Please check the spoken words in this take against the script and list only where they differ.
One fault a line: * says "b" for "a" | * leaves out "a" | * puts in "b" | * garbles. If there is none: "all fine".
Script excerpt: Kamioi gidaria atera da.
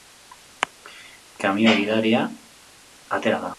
all fine